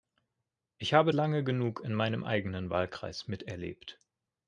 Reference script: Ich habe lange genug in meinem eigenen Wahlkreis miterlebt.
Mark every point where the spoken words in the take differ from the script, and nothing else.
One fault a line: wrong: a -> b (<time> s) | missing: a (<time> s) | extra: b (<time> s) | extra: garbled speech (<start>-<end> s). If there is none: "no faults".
no faults